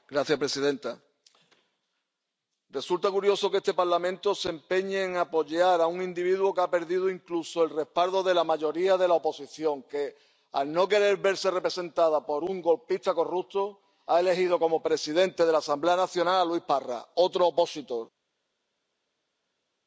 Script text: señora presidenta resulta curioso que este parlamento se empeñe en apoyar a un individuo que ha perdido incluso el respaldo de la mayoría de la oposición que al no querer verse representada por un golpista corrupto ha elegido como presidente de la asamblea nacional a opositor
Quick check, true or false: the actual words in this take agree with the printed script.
false